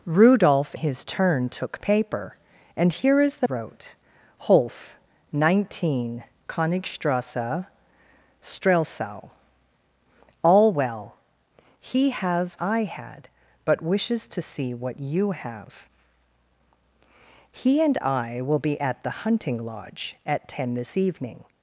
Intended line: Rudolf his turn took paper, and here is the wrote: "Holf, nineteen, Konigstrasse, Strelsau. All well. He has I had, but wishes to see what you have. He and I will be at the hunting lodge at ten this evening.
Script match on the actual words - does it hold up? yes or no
yes